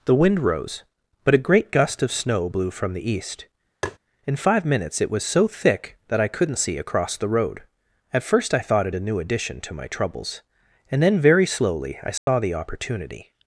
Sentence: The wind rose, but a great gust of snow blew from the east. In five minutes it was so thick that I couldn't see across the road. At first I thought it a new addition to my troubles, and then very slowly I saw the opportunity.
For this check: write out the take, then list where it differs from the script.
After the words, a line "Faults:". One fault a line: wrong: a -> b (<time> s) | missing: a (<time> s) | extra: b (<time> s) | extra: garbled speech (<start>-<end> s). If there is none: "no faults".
The wind rose, but a great gust of snow blew from the east. In five minutes it was so thick that I couldn't see across the road. At first I thought it a new addition to my troubles, and then very slowly I saw the opportunity.
Faults:
no faults